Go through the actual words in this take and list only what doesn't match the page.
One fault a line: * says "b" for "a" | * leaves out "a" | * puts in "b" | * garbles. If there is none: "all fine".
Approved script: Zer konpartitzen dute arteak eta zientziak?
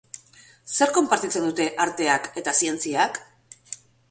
all fine